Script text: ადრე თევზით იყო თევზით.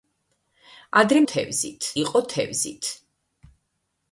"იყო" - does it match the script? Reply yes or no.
yes